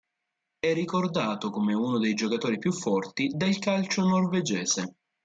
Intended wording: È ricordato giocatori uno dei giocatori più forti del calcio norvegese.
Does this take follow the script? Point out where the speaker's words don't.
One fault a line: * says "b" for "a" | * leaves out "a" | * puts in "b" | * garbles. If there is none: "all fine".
* says "come" for "giocatori"